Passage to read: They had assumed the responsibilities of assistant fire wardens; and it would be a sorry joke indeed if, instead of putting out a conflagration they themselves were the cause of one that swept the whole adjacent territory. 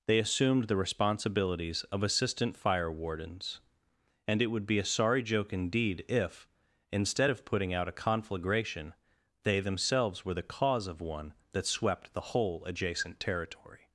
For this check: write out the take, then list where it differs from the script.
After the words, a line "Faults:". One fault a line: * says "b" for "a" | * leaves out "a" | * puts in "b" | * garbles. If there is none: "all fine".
They assumed the responsibilities of assistant fire wardens; and it would be a sorry joke indeed if, instead of putting out a conflagration they themselves were the cause of one that swept the whole adjacent territory.
Faults:
* leaves out "had"